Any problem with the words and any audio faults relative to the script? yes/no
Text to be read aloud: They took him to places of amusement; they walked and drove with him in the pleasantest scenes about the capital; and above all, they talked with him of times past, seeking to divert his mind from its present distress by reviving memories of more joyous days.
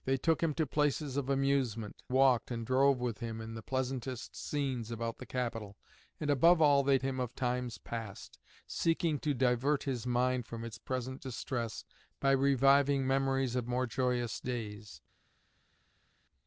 yes